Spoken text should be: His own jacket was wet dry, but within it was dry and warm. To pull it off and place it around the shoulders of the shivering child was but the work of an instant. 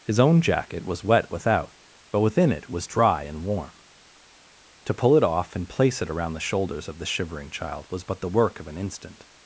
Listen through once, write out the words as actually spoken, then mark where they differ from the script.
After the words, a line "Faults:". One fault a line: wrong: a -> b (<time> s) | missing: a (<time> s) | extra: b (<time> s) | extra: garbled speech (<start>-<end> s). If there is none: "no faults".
His own jacket was wet without, but within it was dry and warm. To pull it off and place it around the shoulders of the shivering child was but the work of an instant.
Faults:
wrong: dry -> without (1.3 s)